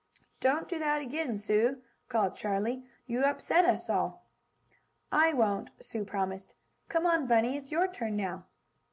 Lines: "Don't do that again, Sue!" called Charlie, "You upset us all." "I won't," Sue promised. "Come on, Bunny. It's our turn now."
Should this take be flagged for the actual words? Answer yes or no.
yes